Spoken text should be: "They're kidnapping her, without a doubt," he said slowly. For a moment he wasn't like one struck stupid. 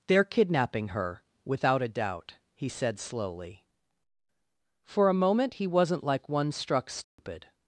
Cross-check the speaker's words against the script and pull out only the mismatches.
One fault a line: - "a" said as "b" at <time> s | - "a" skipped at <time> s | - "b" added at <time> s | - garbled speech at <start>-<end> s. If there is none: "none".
none